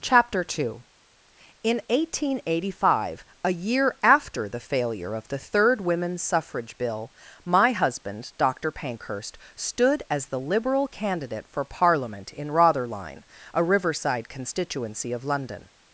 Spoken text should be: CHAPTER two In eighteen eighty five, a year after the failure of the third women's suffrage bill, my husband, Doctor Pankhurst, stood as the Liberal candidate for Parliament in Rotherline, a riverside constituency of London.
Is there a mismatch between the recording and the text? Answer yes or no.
no